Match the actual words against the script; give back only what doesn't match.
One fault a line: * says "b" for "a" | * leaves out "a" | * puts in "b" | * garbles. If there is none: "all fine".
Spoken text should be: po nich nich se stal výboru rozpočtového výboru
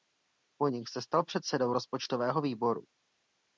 * leaves out "nich"
* says "předsedou" for "výboru"